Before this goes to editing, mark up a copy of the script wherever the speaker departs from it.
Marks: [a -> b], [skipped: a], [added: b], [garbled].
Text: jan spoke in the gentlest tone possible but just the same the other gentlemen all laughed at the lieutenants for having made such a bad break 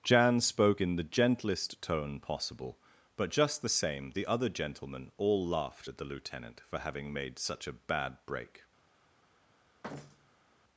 jan spoke in the gentlest tone possible but just the same the other gentlemen all laughed at the [lieutenants -> lieutenant] for having made such a bad break